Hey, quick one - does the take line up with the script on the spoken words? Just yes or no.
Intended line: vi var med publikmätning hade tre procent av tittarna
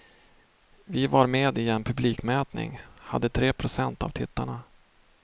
no